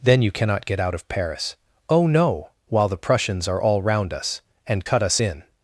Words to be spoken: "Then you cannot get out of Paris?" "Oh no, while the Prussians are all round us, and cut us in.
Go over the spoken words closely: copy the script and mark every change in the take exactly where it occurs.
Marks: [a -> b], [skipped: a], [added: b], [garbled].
"Then you cannot get out of Paris?" "Oh no, while the Prussians are all round us, and cut us in.